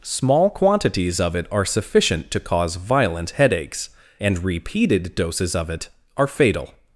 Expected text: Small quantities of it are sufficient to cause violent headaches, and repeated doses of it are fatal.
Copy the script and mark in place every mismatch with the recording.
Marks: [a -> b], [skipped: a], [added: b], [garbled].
Small quantities of it are sufficient to cause violent headaches, and repeated doses of it are fatal.